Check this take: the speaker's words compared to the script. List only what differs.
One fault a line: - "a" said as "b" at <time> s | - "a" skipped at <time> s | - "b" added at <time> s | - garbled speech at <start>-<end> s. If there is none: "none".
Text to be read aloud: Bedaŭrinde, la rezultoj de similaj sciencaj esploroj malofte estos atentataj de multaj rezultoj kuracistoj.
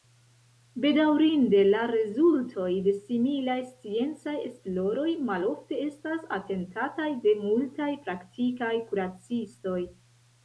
- "estos" said as "estas" at 5.9 s
- "rezultoj" said as "praktikaj" at 8.0 s